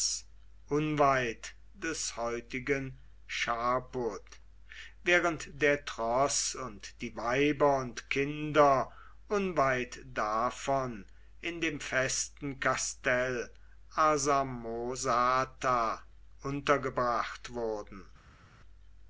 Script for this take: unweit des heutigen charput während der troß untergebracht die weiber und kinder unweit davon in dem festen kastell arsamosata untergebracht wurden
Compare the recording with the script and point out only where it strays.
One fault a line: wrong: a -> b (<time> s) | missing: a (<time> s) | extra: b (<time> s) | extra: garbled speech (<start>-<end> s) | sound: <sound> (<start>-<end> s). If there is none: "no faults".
wrong: untergebracht -> und (6.5 s)